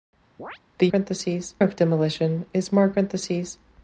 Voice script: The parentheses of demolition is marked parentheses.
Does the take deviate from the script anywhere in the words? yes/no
no